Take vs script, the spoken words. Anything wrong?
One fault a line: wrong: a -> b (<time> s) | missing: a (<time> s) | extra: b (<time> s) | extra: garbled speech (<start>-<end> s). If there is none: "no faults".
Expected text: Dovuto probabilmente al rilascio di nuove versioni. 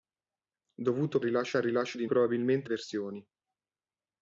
wrong: probabilmente -> rilascio (1.2 s)
wrong: nuove -> probabilmente (2.0 s)